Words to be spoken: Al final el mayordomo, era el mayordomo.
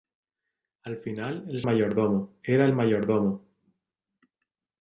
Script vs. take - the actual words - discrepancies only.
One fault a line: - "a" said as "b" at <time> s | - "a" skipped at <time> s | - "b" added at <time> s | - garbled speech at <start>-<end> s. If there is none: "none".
none